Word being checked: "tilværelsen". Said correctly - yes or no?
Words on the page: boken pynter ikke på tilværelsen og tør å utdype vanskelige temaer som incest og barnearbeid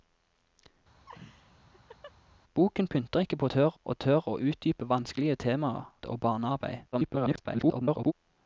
no